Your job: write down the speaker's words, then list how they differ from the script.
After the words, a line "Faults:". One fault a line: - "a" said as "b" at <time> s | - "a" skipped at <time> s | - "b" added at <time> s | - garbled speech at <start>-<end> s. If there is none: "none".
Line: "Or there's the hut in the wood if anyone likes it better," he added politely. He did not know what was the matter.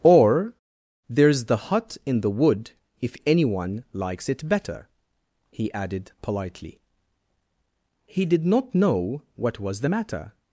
"Or there's the hut in the wood if anyone likes it better," he added politely. He did not know what was the matter.
Faults:
none